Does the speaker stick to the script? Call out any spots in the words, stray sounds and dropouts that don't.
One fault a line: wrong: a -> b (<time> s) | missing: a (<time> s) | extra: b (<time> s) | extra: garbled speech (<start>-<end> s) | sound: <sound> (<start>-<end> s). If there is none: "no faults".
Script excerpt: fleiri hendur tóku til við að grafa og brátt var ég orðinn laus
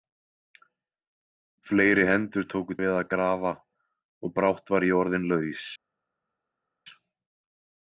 missing: til (2.8 s)